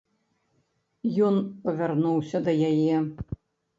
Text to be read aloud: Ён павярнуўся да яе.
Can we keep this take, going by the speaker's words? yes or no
yes